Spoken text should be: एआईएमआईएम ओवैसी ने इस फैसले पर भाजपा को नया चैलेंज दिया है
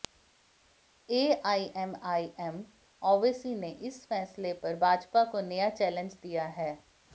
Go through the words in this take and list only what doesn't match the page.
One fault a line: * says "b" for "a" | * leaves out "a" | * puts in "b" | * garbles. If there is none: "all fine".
all fine